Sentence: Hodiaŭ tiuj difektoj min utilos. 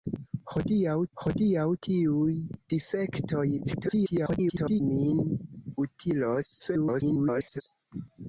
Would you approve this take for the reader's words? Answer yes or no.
no